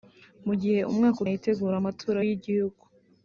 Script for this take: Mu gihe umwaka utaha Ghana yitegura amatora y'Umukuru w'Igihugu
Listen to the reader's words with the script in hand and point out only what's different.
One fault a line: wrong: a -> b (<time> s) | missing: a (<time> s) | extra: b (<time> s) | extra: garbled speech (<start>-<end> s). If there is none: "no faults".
missing: utaha Ghana (1.2 s)
missing: y'Umukuru (2.2 s)